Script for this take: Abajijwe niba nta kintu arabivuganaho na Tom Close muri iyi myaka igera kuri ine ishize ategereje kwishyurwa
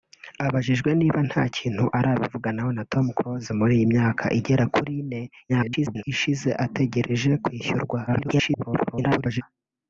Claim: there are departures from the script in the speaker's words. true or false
true